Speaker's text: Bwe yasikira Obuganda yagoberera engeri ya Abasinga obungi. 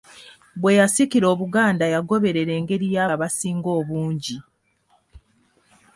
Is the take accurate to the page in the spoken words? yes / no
yes